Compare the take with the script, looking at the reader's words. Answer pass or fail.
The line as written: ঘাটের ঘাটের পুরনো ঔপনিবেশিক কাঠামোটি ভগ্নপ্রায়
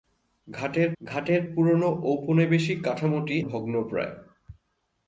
pass